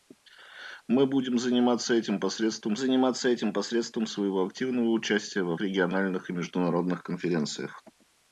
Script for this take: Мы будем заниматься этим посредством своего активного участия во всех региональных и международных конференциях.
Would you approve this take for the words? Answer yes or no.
no